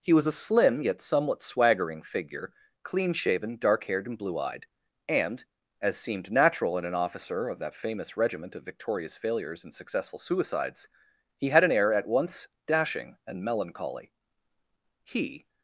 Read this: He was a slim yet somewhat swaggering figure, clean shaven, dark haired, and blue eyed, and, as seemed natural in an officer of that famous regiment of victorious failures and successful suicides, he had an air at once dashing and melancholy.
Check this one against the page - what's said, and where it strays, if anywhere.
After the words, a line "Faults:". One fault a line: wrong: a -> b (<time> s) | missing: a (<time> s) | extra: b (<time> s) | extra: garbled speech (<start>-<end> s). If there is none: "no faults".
He was a slim yet somewhat swaggering figure, clean shaven, dark haired, and blue eyed, and, as seemed natural in an officer of that famous regiment of victorious failures and successful suicides, he had an air at once dashing and melancholy. He
Faults:
extra: He (15.0 s)